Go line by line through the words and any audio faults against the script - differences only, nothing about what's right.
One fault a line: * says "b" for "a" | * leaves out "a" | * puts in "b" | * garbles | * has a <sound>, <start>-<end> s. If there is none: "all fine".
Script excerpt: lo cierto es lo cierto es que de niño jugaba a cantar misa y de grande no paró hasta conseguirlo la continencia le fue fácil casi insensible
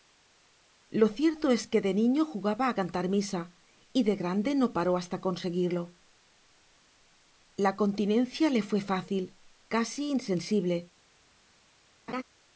* leaves out "lo cierto es"
* has a laugh, 12.1-12.2 s